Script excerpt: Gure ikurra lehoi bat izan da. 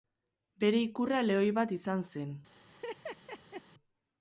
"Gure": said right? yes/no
no